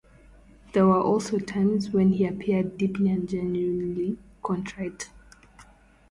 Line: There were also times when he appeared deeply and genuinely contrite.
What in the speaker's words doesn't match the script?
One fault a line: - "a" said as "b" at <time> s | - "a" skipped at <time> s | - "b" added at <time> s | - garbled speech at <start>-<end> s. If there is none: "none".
none